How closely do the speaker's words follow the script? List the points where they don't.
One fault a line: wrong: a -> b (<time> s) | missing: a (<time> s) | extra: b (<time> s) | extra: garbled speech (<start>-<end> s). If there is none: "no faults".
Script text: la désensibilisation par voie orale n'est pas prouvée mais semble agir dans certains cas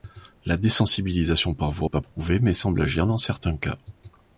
missing: orale n'est (1.9 s)